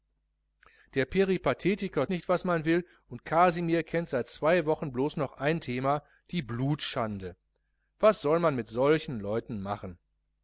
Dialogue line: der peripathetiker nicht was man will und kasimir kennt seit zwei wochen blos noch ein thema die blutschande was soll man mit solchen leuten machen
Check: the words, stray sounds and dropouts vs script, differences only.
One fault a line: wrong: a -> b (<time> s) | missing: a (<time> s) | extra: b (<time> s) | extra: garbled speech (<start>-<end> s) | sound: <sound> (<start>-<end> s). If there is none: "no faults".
no faults